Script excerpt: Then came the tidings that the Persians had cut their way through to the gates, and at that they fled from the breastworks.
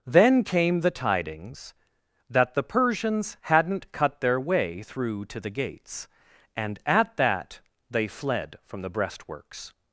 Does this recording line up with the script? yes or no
no